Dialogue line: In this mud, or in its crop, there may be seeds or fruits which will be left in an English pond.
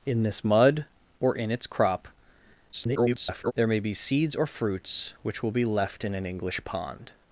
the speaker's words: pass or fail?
fail